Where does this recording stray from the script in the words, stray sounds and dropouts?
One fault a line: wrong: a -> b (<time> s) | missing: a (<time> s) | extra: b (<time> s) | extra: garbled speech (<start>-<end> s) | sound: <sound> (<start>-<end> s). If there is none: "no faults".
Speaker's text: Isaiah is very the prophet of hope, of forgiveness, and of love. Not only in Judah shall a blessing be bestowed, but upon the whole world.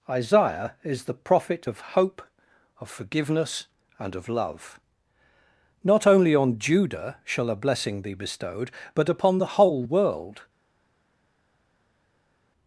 missing: very (1.0 s)
wrong: in -> on (6.3 s)